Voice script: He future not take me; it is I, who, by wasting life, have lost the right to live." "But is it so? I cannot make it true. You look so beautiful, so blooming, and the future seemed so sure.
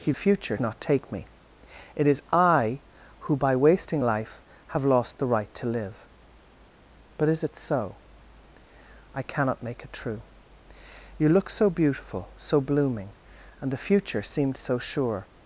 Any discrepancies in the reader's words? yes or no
no